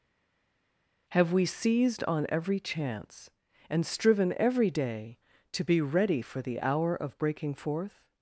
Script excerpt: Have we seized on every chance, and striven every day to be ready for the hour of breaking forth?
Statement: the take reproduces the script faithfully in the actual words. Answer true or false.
true